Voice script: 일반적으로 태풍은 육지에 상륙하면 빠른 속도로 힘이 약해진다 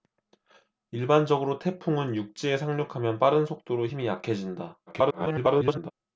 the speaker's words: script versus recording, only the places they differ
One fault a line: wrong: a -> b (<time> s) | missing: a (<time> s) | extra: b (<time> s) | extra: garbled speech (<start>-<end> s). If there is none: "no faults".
extra: garbled speech (4.9-5.9 s)